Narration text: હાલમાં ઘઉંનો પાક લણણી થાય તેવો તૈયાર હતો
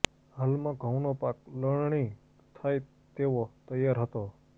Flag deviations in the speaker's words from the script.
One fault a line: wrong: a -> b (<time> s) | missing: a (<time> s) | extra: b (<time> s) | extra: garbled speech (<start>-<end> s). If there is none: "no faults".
no faults